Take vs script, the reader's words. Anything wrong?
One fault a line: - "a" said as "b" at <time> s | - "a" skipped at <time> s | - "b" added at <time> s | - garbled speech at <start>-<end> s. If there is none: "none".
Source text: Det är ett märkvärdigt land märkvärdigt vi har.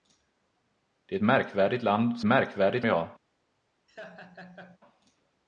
none